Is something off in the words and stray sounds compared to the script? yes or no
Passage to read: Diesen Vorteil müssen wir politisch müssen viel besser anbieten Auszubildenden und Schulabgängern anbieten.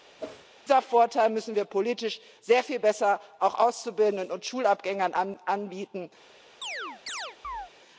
yes